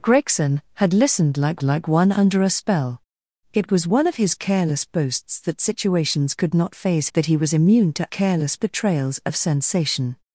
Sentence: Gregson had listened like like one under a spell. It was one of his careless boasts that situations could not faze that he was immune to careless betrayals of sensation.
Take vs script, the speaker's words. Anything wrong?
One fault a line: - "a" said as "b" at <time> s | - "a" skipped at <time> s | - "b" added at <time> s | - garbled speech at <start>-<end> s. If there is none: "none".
none